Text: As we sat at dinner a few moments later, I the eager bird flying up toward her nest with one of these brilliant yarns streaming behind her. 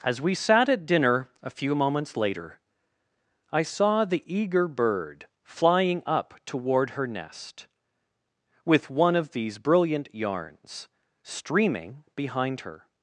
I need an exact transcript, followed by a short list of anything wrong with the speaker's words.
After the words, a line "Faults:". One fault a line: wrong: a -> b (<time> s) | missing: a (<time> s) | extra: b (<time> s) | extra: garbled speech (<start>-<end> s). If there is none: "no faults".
As we sat at dinner a few moments later, I saw the eager bird flying up toward her nest with one of these brilliant yarns streaming behind her.
Faults:
extra: saw (3.6 s)